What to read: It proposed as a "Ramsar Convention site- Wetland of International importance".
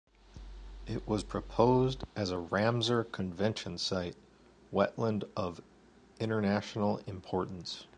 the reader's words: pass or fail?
fail